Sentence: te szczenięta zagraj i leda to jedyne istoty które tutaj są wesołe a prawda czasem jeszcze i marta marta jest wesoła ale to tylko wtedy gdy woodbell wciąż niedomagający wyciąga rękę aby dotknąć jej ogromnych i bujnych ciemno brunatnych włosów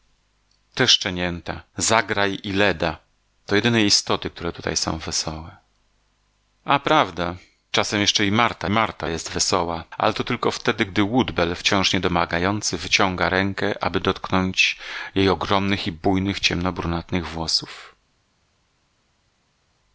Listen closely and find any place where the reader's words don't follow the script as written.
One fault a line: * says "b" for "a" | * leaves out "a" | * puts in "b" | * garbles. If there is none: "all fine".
all fine